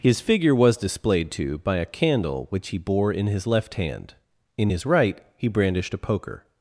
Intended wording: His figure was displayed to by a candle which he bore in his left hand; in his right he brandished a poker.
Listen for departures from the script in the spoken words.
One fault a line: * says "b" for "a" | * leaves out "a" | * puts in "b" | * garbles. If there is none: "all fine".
all fine